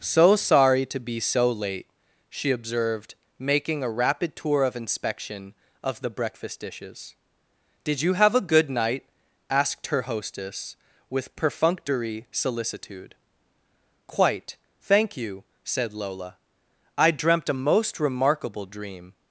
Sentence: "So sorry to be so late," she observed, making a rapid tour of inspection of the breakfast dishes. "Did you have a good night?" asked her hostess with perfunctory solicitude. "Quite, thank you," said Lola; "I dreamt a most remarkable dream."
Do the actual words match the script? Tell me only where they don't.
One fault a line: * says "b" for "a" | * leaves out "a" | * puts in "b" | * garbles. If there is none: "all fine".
all fine